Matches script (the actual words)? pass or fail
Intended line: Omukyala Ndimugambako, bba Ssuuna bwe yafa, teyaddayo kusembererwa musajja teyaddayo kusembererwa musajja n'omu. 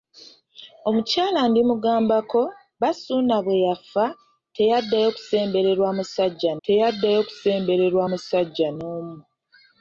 pass